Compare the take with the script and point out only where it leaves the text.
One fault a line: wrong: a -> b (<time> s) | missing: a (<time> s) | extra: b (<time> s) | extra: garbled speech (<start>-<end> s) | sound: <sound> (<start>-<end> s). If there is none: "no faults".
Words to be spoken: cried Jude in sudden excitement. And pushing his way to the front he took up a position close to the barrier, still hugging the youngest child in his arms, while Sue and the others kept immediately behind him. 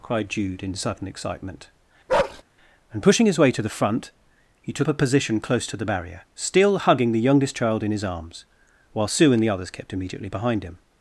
sound: bark (2.1-2.4 s)
missing: up (4.9 s)